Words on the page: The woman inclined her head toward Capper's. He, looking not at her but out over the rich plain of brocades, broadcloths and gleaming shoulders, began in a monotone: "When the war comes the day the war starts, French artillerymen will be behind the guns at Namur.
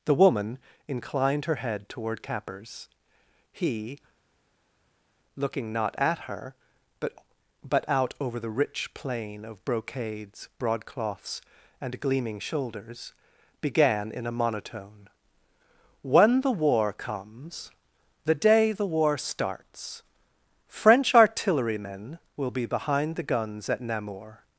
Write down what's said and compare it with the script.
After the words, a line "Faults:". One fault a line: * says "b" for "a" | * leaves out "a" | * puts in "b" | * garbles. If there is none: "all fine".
The woman inclined her head toward Capper's. He, looking not at her but but out over the rich plain of brocades, broadcloths and gleaming shoulders, began in a monotone: "When the war comes the day the war starts, French artillerymen will be behind the guns at Namur.
Faults:
* puts in "but"